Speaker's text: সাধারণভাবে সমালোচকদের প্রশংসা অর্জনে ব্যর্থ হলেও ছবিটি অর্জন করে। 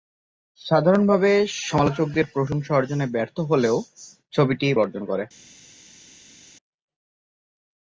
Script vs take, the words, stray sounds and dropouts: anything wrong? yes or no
no